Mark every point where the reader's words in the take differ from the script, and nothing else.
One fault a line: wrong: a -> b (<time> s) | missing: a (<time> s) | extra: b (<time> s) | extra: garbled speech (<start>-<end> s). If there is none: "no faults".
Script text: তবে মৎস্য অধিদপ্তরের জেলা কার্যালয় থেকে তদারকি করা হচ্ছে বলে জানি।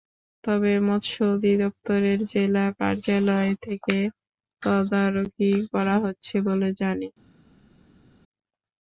no faults